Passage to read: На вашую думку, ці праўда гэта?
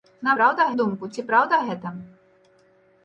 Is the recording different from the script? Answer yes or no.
yes